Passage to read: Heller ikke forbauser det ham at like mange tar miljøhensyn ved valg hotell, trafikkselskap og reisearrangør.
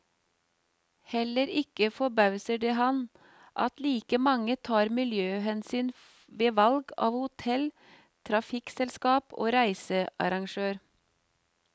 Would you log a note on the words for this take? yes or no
yes